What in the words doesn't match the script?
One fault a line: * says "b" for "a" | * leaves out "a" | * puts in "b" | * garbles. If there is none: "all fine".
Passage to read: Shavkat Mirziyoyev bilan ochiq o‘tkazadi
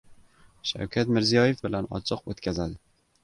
all fine